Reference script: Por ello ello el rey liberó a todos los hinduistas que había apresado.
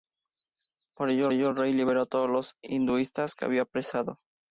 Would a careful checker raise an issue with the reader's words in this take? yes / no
no